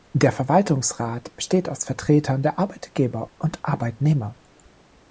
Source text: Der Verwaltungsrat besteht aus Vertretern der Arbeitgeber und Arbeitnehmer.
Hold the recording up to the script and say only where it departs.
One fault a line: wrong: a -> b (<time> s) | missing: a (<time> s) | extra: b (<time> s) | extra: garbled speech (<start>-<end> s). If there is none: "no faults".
no faults